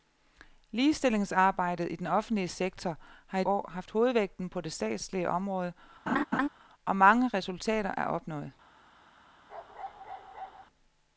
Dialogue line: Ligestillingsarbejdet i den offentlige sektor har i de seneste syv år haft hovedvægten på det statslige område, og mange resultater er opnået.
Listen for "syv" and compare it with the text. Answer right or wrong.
wrong